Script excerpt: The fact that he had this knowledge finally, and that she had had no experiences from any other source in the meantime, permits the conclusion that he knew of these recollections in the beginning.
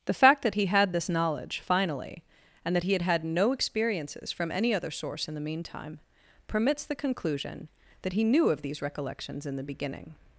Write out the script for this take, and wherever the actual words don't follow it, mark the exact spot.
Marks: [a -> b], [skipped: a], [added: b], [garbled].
The fact that he had this knowledge finally, and that [she -> he] had had no experiences from any other source in the meantime, permits the conclusion that he knew of these recollections in the beginning.